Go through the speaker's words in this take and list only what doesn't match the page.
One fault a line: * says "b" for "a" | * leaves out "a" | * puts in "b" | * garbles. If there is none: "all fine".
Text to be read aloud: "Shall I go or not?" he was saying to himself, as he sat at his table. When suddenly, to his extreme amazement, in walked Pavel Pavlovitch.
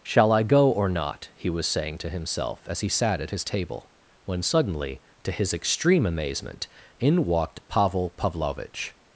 all fine